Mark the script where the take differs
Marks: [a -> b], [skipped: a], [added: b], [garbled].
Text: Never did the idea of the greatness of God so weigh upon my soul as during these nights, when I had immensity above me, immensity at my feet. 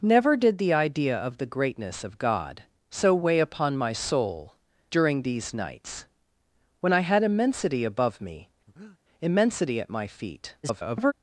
Never did the idea of the greatness of God so weigh upon my soul [skipped: as] during these nights, when I had immensity above me, immensity at my feet. [garbled]